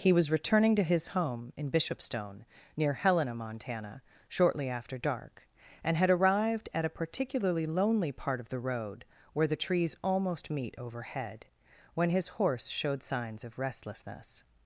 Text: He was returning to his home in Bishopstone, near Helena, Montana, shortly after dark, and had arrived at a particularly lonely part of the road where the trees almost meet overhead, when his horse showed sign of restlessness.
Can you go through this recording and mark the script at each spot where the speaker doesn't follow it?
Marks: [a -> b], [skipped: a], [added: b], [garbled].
He was returning to his home in Bishopstone, near Helena, Montana, shortly after dark, and had arrived at a particularly lonely part of the road where the trees almost meet overhead, when his horse showed [sign -> signs] of restlessness.